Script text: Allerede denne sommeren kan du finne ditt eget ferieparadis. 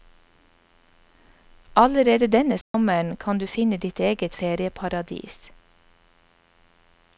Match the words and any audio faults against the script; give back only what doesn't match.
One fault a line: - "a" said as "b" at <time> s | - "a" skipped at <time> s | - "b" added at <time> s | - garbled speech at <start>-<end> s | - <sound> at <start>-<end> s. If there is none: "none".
- dropout at 2.6-2.7 s